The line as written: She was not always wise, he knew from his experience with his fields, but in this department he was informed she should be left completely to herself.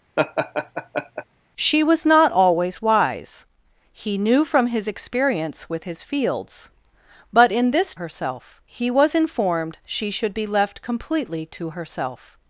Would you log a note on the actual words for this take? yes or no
yes